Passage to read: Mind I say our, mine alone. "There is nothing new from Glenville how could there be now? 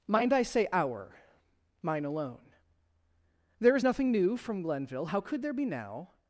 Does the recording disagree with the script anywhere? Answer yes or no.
no